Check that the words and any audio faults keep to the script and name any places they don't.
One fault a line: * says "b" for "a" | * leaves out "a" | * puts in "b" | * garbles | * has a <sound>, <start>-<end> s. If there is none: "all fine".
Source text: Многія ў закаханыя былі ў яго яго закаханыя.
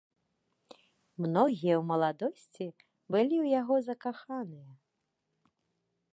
* says "маладосці" for "закаханыя"
* leaves out "яго"